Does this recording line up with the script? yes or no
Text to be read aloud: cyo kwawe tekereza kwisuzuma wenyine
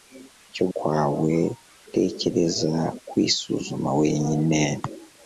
yes